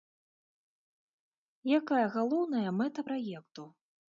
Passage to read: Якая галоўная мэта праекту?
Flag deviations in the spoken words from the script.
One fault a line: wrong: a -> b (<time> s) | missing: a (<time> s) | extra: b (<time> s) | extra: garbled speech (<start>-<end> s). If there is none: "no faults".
no faults